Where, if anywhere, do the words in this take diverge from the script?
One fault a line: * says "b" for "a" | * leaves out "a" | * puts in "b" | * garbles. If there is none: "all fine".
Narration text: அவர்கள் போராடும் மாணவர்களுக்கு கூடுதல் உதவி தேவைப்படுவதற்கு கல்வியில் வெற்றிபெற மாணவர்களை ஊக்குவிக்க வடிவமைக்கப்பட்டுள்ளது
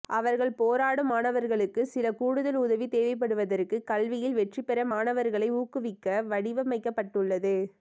* puts in "சில"